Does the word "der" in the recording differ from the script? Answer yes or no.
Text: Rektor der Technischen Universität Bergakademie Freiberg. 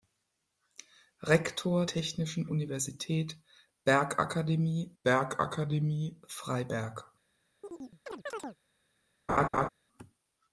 yes